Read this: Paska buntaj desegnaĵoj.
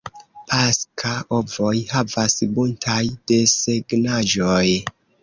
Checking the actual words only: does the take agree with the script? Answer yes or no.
no